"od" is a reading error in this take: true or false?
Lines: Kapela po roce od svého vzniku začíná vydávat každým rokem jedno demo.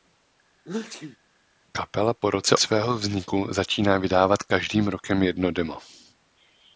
true